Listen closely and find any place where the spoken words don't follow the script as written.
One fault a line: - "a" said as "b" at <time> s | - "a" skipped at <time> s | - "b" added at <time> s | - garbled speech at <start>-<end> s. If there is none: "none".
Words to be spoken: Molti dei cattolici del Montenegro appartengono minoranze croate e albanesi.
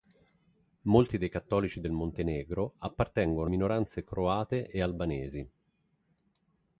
none